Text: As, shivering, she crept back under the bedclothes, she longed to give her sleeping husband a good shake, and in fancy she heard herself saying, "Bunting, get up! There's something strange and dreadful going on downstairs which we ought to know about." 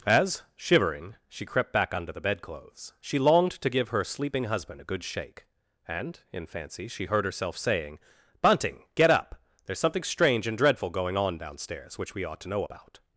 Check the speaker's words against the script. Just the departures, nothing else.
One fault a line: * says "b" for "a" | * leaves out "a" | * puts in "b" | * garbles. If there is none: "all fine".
all fine